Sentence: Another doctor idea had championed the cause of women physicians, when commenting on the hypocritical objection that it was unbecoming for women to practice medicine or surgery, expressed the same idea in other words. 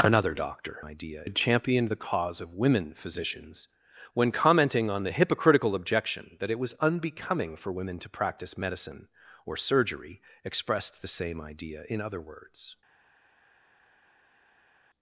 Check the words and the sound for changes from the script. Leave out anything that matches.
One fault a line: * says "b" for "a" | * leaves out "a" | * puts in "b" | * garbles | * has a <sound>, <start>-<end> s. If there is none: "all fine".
all fine